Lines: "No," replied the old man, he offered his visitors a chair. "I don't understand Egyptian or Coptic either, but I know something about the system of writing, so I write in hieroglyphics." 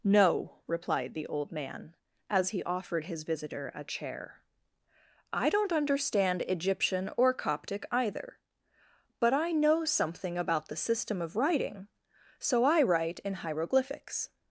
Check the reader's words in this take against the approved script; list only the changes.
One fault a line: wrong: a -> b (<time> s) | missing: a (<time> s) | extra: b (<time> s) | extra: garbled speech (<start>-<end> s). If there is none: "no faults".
extra: as (2.3 s)
wrong: visitors -> visitor (3.2 s)